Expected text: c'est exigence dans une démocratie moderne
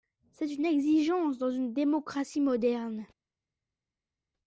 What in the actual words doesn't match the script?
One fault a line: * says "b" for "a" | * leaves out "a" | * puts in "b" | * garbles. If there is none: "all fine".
* puts in "une"